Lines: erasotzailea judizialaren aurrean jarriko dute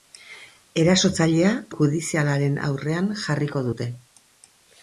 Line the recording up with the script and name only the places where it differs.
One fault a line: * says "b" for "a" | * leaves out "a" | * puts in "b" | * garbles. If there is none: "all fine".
all fine